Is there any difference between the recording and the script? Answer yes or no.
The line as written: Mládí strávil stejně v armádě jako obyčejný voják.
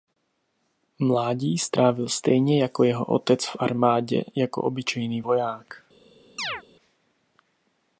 yes